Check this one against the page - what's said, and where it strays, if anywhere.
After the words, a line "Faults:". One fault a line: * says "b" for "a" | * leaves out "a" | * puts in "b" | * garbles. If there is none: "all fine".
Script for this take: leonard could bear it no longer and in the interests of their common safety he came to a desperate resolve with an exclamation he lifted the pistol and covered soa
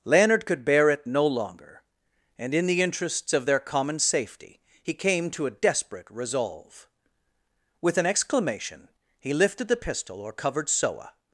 leonard could bear it no longer and in the interests of their common safety he came to a desperate resolve with an exclamation he lifted the pistol or covered soa
Faults:
* says "or" for "and"